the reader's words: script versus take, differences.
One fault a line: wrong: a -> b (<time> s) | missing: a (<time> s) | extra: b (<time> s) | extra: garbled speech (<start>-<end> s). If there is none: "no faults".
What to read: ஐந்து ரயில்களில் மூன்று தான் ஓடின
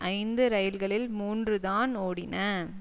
no faults